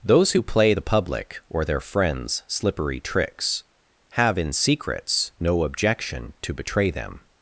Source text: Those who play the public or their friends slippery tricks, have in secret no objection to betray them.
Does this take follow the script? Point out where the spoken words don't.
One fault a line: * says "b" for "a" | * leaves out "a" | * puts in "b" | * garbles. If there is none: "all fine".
* says "secrets" for "secret"